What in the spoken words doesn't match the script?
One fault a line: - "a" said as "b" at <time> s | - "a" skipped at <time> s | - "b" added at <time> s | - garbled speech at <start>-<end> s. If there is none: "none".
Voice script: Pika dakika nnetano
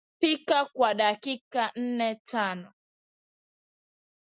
- "kwa" added at 0.7 s